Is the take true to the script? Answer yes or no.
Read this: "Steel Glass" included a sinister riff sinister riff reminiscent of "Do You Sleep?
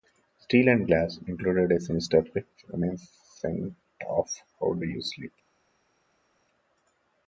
no